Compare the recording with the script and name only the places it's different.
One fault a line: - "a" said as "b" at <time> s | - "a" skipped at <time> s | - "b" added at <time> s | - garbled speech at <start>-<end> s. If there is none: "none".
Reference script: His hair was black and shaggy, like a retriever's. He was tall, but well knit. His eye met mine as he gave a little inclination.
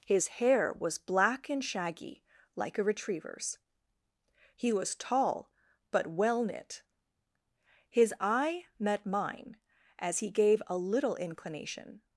none